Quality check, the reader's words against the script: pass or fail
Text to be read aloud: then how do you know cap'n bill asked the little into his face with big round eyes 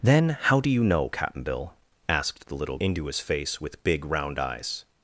pass